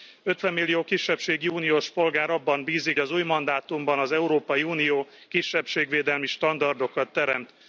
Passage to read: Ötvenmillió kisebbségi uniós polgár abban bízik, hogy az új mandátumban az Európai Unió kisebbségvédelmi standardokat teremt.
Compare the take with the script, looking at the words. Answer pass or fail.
fail